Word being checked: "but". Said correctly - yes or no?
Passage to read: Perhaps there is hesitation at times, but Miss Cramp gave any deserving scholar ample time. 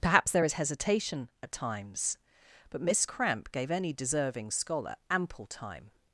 yes